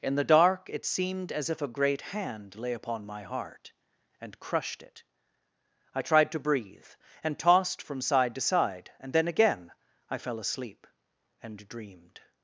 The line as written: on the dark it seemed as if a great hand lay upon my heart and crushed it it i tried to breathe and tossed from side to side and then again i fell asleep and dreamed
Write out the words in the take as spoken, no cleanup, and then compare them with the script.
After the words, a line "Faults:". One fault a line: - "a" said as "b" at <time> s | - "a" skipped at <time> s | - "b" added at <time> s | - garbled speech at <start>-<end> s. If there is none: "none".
in the dark it seemed as if a great hand lay upon my heart and crushed it i tried to breathe and tossed from side to side and then again i fell asleep and dreamed
Faults:
- "on" said as "in" at 0.0 s
- "it" skipped at 5.0 s